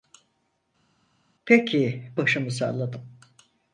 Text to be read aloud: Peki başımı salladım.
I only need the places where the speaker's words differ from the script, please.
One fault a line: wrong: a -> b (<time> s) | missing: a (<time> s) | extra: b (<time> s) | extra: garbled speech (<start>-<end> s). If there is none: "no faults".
no faults